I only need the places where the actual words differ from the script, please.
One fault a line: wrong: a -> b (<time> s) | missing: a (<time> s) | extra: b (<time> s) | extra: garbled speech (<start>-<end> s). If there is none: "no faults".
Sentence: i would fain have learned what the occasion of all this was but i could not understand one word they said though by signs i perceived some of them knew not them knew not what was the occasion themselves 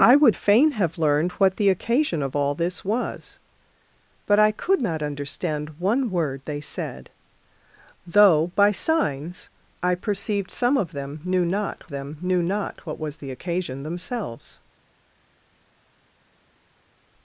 no faults